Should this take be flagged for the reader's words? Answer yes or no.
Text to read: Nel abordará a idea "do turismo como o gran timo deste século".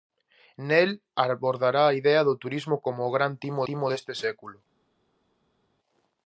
yes